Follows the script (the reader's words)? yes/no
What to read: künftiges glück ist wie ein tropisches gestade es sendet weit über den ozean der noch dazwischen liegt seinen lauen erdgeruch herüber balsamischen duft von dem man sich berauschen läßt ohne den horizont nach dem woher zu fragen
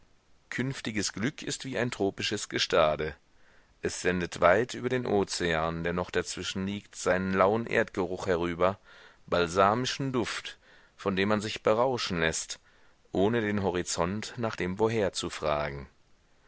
yes